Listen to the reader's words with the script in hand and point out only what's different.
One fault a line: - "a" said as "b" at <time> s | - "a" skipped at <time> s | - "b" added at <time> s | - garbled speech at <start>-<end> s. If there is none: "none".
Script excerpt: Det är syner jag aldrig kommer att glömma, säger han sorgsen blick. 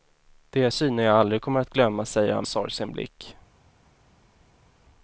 none